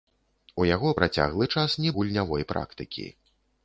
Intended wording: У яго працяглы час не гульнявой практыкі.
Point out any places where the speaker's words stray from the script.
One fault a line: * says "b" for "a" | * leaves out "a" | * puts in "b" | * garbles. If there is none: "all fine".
all fine